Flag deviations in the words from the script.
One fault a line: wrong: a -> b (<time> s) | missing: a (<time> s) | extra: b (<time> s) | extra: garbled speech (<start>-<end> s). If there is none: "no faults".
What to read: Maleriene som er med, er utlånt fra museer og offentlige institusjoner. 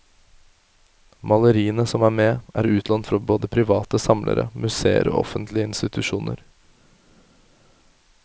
extra: både private samlere (3.3 s)